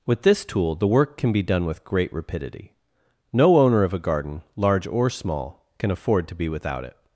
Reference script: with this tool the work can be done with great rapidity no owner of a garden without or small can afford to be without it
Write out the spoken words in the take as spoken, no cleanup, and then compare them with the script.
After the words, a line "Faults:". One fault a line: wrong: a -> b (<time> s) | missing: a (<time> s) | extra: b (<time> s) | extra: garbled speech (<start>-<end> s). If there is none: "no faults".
with this tool the work can be done with great rapidity no owner of a garden large or small can afford to be without it
Faults:
wrong: without -> large (4.5 s)